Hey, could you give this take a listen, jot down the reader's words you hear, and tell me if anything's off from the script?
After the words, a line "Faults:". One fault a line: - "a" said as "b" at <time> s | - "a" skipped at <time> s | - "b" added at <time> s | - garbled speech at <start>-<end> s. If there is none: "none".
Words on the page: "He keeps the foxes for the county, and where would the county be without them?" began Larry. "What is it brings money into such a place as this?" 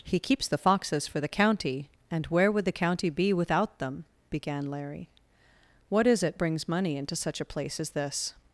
"He keeps the foxes for the county, and where would the county be without them?" began Larry. "What is it brings money into such a place as this?"
Faults:
none